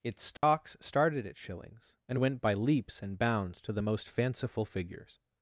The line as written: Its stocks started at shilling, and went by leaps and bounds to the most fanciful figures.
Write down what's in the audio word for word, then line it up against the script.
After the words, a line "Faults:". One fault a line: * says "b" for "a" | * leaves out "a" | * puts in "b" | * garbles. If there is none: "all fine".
Its stocks started at shillings, and went by leaps and bounds to the most fanciful figures.
Faults:
* says "shillings" for "shilling"